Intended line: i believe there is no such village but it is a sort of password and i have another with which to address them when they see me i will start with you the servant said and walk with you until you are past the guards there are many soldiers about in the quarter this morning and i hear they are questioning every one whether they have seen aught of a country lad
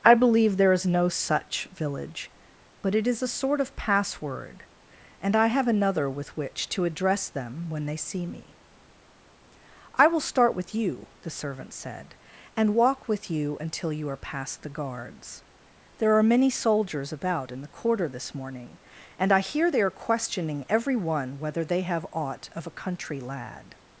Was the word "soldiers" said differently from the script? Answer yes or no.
no